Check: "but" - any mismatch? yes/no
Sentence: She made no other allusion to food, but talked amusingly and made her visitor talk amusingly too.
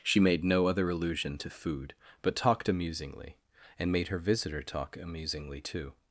no